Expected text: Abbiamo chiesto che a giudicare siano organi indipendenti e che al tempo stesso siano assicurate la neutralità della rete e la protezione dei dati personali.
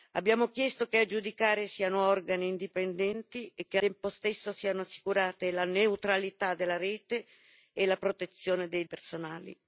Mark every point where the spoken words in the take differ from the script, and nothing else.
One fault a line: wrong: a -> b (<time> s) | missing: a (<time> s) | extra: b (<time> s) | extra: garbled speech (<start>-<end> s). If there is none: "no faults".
missing: al (3.8 s)
missing: dati (8.8 s)